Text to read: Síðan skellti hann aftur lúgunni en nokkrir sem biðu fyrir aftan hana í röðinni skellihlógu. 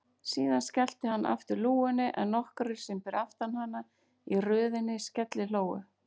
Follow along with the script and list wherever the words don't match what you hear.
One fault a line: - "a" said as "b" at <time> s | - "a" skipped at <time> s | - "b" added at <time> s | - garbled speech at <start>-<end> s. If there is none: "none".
- "biðu" skipped at 3.0 s